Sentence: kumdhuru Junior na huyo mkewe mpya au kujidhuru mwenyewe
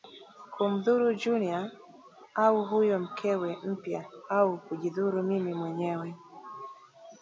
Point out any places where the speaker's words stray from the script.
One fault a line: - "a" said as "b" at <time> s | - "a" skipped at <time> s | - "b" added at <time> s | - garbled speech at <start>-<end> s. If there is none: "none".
- "na" said as "au" at 2.3 s
- "mimi" added at 5.2 s